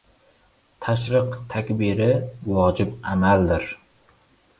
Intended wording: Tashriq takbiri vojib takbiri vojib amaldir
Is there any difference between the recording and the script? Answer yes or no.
yes